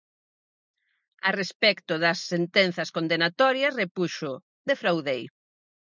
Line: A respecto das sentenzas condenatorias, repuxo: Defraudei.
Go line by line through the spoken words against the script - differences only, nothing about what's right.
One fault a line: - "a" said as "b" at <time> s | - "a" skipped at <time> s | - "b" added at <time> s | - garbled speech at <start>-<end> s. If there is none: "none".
none